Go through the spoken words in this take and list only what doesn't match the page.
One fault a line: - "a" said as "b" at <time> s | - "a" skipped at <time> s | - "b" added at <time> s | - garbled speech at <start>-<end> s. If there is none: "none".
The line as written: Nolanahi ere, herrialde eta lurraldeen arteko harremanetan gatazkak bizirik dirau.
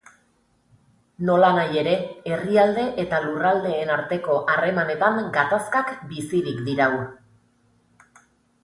none